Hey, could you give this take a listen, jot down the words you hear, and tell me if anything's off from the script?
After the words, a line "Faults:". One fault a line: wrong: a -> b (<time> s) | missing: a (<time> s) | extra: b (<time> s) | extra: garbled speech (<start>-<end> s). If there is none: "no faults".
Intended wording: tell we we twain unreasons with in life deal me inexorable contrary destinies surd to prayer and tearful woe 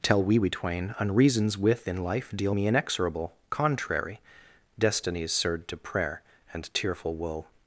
tell we we twain unreasons with in life deal me inexorable contrary destinies surd to prayer and tearful woe
Faults:
no faults